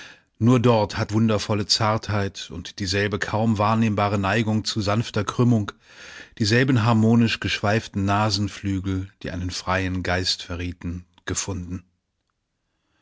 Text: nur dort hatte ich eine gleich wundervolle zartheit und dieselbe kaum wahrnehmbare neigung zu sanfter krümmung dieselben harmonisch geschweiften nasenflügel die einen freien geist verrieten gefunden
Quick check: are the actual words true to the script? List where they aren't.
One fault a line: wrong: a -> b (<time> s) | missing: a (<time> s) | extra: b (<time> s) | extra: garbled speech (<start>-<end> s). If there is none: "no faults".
missing: ich eine gleich (1.1 s)